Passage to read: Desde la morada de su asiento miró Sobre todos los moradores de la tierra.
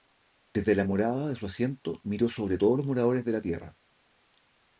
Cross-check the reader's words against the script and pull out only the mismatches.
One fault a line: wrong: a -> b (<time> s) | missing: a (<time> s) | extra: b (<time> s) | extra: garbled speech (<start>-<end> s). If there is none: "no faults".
no faults